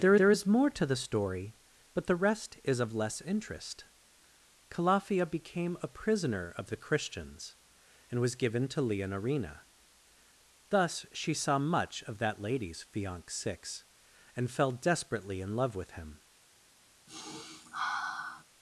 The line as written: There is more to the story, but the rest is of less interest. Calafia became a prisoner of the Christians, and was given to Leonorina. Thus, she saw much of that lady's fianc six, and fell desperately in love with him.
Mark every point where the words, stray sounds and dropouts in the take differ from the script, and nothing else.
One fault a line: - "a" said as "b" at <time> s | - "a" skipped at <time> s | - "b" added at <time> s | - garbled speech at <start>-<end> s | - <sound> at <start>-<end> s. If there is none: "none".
- "there" added at 0.2 s
- sniff at 17.1-18.4 s